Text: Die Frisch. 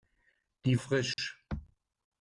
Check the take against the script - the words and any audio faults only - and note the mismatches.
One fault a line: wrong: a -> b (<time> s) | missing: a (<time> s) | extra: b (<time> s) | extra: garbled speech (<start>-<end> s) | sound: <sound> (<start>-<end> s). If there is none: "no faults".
sound: dropout (1.1-1.2 s)